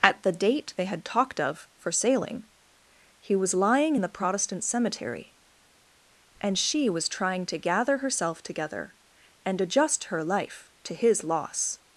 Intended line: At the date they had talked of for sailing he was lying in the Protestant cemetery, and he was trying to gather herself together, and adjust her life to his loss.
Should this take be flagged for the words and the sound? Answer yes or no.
yes